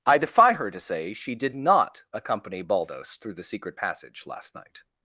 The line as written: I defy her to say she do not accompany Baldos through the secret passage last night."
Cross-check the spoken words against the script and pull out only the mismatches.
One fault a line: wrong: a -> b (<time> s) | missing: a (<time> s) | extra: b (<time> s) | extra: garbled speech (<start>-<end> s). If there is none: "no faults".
wrong: do -> did (1.4 s)